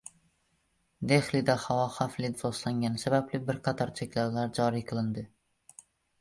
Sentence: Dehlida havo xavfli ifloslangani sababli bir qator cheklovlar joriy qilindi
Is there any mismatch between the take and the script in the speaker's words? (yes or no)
no